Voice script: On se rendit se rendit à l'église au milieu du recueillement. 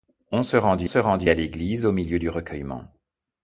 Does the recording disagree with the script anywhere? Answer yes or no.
no